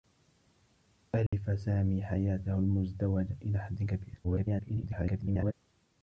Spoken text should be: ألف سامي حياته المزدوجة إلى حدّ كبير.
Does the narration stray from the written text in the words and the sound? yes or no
yes